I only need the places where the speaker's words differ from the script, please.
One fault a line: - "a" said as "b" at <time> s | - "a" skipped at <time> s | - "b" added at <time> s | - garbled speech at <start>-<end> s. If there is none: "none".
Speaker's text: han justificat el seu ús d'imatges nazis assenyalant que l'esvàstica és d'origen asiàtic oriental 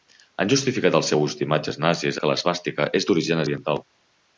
- "assenyalant" skipped at 2.2 s
- "asiàtic" skipped at 3.5 s